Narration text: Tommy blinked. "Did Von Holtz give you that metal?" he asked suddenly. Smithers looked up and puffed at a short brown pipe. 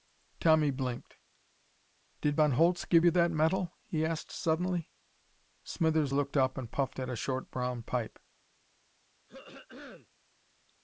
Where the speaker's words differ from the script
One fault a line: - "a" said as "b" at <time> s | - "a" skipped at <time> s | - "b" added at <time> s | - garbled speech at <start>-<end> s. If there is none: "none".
none